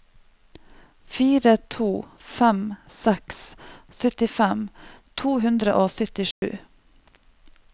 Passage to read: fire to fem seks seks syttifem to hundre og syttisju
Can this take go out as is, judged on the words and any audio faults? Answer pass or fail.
fail